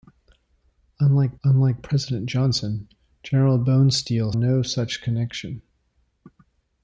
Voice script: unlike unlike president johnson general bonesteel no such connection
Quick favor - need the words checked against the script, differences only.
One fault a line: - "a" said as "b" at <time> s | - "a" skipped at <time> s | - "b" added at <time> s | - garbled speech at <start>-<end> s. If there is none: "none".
none